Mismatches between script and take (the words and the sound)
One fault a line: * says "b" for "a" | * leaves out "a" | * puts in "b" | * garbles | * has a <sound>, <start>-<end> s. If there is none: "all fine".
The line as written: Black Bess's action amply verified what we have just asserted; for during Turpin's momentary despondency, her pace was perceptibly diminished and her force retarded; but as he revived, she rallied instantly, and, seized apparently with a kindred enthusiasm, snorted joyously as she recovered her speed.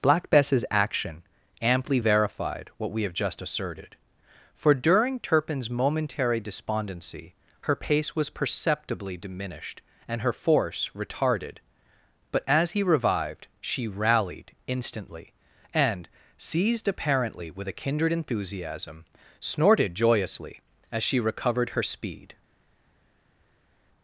all fine